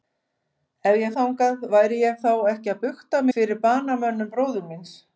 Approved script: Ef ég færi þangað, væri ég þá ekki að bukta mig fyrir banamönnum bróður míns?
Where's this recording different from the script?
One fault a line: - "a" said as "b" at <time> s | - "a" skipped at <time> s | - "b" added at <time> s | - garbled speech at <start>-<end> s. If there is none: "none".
- "færi" skipped at 1.1 s
- "mig" skipped at 3.2 s